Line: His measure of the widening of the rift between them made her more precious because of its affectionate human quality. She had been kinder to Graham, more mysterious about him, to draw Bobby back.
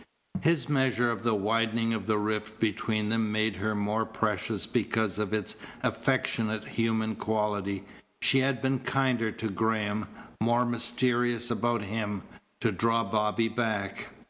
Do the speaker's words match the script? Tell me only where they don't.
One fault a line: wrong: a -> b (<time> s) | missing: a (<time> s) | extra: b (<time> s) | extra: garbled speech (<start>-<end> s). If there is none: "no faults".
no faults